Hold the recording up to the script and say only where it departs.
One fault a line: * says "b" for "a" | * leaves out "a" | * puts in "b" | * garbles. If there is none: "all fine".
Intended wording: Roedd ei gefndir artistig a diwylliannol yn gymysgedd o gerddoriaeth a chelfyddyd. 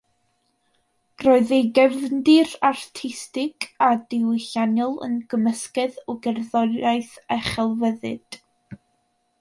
all fine